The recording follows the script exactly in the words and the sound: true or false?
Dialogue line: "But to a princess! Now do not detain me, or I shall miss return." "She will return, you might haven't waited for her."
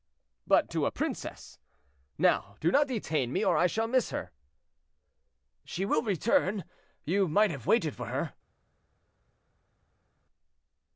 false